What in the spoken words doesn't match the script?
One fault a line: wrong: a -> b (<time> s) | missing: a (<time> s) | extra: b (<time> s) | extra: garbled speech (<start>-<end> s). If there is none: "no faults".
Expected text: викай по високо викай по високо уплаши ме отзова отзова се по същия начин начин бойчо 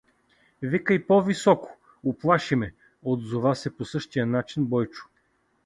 missing: викай по високо (1.8 s)
missing: отзова (3.6 s)
missing: начин (4.7 s)